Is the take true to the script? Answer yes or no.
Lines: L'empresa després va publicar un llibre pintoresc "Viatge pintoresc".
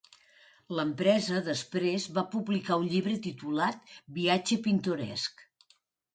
no